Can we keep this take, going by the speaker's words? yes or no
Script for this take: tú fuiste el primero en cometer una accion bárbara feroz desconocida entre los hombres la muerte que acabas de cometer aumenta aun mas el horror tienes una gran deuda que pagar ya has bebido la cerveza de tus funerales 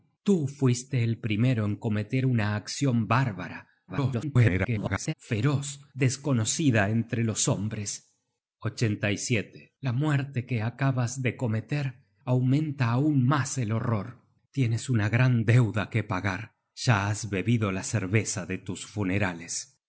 no